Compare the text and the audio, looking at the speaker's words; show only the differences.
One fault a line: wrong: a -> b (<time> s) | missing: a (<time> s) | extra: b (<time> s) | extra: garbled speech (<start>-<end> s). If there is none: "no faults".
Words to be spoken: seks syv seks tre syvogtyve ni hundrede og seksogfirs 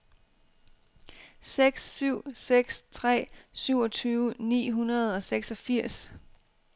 no faults